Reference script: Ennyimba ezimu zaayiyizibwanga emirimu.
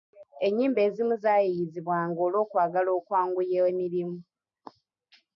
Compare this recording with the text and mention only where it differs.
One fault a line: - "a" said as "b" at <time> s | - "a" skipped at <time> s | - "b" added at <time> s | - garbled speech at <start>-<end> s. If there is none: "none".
- "olw'okwagala okwanguya" added at 2.3 s